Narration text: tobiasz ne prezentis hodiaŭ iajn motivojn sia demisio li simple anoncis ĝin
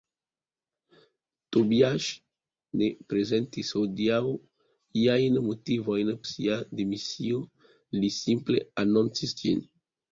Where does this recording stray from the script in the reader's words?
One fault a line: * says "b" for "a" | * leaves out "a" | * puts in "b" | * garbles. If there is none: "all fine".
all fine